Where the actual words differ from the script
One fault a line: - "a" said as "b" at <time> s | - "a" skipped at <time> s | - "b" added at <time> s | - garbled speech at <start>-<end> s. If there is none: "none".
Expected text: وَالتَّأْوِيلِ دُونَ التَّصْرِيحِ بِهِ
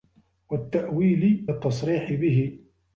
- "دُونَ" skipped at 1.5 s